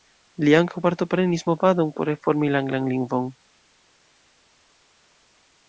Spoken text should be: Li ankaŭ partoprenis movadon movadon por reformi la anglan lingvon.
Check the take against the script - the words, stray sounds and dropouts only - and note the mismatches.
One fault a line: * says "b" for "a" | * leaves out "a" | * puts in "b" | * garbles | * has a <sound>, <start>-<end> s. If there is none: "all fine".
* leaves out "movadon"